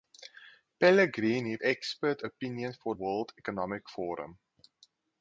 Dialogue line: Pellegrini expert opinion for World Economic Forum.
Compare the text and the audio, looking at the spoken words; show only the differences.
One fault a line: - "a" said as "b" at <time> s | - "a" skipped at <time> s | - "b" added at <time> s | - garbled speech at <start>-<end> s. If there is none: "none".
none